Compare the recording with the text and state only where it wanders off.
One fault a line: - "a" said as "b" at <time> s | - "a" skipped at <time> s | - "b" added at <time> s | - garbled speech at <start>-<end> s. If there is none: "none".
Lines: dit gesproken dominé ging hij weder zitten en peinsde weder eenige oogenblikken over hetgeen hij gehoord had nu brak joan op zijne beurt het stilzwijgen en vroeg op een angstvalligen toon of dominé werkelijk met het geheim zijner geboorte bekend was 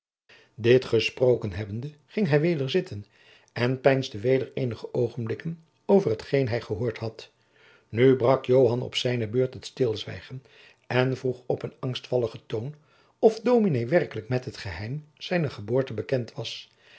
- "dominé" said as "hebbende" at 1.5 s